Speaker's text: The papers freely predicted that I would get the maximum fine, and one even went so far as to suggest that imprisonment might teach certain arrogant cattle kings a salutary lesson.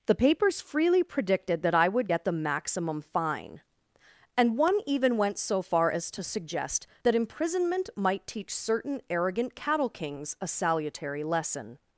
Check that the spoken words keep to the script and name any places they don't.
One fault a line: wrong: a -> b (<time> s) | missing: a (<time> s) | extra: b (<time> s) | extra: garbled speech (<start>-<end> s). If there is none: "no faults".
no faults